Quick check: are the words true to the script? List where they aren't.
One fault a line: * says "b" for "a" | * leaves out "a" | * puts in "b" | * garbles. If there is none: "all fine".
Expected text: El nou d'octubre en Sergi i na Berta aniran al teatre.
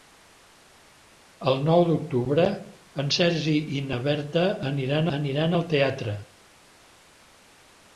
* puts in "aniran"